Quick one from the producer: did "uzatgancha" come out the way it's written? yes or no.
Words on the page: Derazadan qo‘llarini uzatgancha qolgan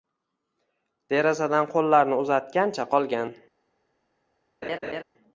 yes